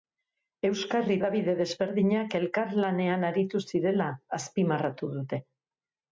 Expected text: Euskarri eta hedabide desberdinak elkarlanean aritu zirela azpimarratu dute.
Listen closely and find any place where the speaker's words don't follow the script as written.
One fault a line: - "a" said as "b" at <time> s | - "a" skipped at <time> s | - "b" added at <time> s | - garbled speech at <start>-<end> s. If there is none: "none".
- "eta" skipped at 1.2 s